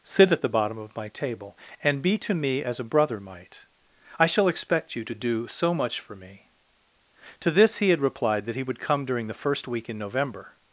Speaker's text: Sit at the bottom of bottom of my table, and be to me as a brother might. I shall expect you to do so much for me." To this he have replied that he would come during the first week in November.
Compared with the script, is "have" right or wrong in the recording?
wrong